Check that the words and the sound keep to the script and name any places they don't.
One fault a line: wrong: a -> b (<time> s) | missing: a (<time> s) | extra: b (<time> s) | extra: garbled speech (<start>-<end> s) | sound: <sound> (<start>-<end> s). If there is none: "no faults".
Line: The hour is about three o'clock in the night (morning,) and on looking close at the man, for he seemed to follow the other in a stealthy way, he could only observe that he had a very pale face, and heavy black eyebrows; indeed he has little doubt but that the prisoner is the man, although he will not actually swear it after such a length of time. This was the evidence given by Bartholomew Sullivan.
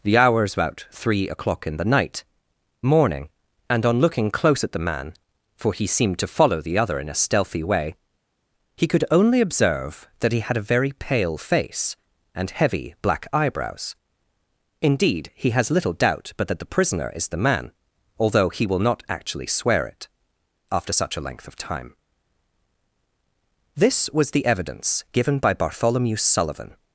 no faults